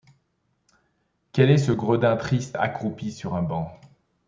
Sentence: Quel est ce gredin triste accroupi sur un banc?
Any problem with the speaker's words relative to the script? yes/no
no